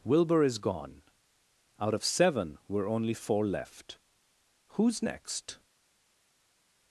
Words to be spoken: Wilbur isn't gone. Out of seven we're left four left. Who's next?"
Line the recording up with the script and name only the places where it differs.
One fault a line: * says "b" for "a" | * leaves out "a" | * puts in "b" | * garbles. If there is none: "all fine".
* says "is" for "isn't"
* says "only" for "left"